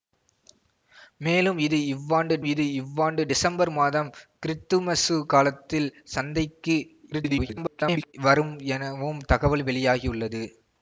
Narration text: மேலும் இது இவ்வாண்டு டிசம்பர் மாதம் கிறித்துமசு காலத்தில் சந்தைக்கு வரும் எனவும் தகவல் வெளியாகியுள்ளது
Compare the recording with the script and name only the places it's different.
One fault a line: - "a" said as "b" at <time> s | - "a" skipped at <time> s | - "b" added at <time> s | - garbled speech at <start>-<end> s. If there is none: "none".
- "இது இவ்வாண்டு" added at 2.4 s
- garbled speech at 7.1-8.1 s